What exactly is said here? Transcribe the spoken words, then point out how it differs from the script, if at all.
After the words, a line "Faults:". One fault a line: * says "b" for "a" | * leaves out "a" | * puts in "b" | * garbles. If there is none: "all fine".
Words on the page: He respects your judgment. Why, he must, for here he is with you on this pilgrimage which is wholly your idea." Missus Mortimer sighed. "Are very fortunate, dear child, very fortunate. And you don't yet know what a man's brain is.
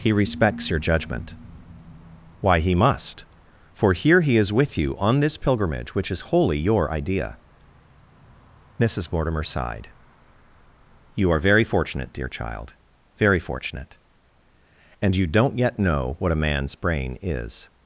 He respects your judgment. Why, he must, for here he is with you on this pilgrimage which is wholly your idea." Missus Mortimer sighed. "You are very fortunate, dear child, very fortunate. And you don't yet know what a man's brain is.
Faults:
* puts in "You"